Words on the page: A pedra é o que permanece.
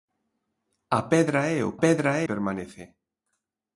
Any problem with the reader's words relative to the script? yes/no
yes